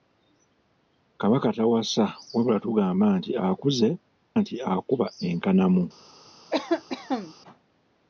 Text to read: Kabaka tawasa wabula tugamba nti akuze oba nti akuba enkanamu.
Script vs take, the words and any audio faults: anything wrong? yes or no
yes